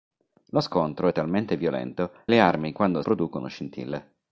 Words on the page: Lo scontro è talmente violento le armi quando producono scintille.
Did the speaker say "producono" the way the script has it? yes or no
yes